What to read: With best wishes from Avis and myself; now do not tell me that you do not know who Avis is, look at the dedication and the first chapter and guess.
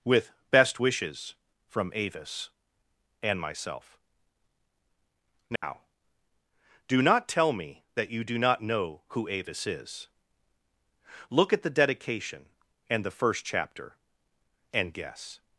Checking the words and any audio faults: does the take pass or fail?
fail